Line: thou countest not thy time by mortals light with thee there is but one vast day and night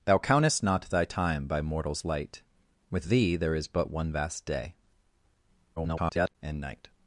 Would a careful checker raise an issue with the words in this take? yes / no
yes